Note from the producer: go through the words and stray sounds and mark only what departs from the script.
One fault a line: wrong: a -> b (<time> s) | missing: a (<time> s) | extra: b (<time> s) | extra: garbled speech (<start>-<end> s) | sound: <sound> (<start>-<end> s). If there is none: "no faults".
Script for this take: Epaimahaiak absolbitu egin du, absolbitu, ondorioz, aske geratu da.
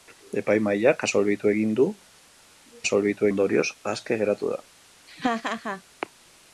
sound: laugh (5.1-5.8 s)